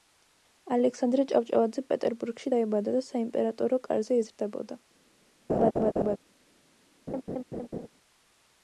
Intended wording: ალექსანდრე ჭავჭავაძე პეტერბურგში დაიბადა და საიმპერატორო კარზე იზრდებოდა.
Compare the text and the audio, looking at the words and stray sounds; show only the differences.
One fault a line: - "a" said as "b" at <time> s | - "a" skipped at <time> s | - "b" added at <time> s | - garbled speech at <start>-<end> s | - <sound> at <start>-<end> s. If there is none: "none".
- laugh at 5.5-6.2 s
- laugh at 7.1-7.9 s